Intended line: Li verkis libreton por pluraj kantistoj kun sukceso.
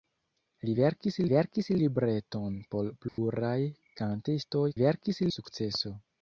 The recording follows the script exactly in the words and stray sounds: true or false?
false